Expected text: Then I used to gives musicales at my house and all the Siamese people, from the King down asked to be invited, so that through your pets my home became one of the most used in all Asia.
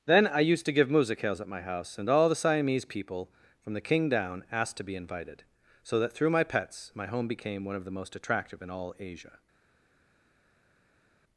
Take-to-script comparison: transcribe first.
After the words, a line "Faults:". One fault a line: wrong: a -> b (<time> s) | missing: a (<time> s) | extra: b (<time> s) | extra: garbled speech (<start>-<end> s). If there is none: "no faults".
Then I used to give musicales at my house and all the Siamese people, from the King down asked to be invited, so that through my pets my home became one of the most attractive in all Asia.
Faults:
wrong: gives -> give (0.7 s)
wrong: your -> my (6.3 s)
wrong: used -> attractive (8.2 s)